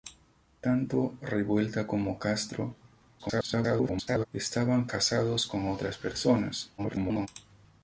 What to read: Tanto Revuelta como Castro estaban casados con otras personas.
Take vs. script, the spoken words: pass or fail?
fail